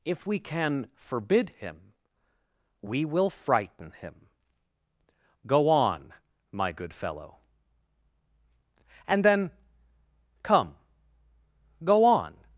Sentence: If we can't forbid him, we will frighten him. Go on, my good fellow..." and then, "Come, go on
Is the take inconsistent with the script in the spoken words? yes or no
yes